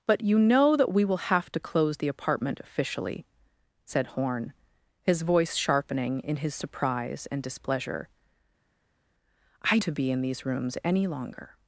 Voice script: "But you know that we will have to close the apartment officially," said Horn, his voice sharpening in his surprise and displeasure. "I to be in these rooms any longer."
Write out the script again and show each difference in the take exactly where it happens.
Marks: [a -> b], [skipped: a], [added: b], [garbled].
"But you know that we will have to close the apartment officially," said Horn, his voice sharpening in his surprise and displeasure. "I to be in these rooms any longer."